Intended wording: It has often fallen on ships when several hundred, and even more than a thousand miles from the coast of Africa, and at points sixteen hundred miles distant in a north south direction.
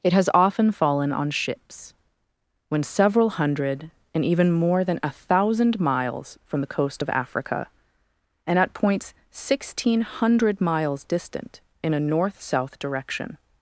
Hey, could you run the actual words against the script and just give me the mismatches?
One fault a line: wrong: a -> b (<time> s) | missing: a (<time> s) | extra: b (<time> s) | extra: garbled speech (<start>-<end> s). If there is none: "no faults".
no faults